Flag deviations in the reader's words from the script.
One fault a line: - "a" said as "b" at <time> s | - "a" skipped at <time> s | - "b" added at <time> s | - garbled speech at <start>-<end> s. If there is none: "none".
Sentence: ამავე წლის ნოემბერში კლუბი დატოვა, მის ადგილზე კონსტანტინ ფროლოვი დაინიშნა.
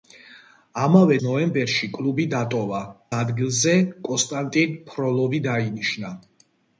- "წლის" skipped at 1.2 s
- "მის" skipped at 2.8 s